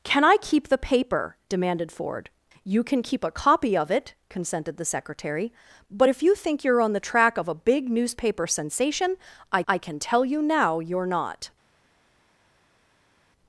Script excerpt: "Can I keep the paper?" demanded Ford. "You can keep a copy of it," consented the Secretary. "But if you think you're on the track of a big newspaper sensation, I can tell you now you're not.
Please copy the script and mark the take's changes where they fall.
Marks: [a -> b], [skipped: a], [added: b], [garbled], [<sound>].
"Can I keep the paper?" demanded Ford. "You can keep a copy of it," consented the Secretary. "But if you think you're on the track of a big newspaper sensation, I [added: I] can tell you now you're not.